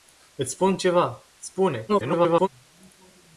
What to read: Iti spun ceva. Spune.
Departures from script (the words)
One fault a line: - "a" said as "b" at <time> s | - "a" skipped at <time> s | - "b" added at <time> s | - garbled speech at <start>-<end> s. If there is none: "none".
- garbled speech at 1.9-2.5 s